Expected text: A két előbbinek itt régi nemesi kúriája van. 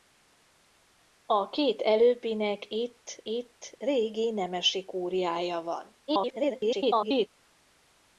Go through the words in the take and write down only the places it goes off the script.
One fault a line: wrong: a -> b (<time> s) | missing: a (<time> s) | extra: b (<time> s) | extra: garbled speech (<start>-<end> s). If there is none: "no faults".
extra: itt (3.2 s)
extra: garbled speech (6.1-7.3 s)